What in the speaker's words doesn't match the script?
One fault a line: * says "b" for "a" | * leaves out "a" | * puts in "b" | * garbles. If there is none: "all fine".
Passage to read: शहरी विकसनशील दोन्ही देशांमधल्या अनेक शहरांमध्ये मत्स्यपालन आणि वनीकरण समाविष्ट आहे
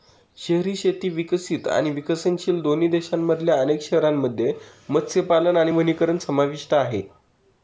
* puts in "शेती विकसित आणि"